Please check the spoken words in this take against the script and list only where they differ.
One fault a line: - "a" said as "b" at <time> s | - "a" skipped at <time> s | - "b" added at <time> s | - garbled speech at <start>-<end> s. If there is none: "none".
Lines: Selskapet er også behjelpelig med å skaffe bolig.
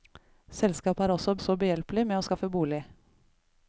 - "også" added at 1.4 s